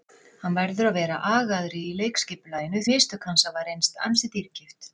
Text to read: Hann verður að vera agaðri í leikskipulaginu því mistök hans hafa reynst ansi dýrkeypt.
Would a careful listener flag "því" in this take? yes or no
yes